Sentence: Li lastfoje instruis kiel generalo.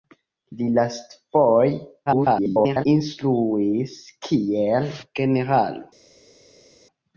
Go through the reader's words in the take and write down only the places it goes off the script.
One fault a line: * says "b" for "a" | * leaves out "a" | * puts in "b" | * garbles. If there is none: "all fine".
* garbles